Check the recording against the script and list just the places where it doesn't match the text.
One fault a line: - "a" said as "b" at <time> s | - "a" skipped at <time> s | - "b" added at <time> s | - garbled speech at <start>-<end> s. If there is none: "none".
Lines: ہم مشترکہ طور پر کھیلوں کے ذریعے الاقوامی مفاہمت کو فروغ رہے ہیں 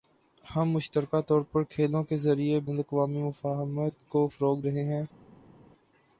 none